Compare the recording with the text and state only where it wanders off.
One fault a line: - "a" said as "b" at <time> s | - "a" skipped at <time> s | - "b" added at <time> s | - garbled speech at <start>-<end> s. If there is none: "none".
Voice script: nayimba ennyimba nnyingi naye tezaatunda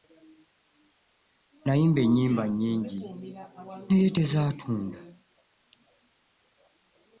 none